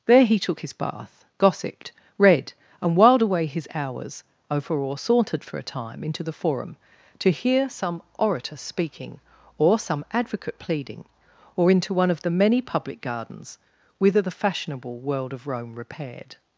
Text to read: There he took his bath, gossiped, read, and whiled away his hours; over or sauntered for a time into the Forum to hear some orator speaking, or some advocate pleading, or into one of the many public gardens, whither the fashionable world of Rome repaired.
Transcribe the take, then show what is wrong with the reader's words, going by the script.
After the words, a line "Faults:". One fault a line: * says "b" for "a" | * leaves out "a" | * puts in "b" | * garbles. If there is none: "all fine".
There he took his bath, gossiped, read, and whiled away his hours; over or sauntered for a time into the Forum to hear some orator speaking, or some advocate pleading, or into one of the many public gardens, whither the fashionable world of Rome repaired.
Faults:
all fine